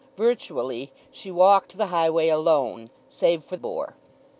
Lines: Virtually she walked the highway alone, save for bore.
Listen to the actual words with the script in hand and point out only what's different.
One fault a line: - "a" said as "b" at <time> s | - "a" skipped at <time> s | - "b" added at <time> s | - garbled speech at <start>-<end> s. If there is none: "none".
none